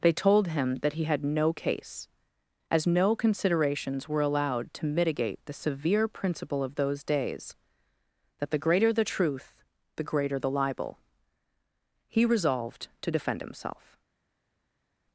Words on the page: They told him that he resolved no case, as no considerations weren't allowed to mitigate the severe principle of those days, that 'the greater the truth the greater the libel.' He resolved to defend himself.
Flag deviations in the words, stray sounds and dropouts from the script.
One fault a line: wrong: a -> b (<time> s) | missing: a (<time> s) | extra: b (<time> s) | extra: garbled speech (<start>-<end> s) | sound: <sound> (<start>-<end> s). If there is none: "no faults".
wrong: resolved -> had (1.1 s)
wrong: weren't -> were (4.1 s)